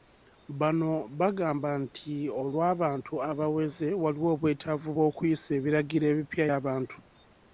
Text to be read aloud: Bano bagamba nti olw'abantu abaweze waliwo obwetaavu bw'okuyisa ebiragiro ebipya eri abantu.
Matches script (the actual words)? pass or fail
fail